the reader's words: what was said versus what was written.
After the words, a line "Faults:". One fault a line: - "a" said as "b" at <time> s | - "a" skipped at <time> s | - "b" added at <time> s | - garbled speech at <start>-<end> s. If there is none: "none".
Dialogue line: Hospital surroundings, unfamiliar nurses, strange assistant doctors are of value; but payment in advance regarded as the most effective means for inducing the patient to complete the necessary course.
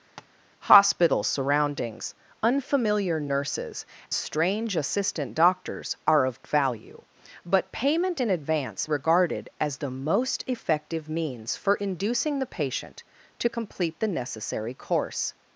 Hospital surroundings, unfamiliar nurses, strange assistant doctors are of value; but payment in advance regarded as the most effective means for inducing the patient to complete the necessary course.
Faults:
none